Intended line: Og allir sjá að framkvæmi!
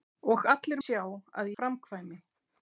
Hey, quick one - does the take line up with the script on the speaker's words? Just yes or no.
yes